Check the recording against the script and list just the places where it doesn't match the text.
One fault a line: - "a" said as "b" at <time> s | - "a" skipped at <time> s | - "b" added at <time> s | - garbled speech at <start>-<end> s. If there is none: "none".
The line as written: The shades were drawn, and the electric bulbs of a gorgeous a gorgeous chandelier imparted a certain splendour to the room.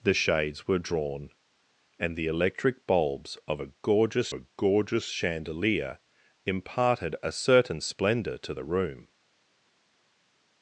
none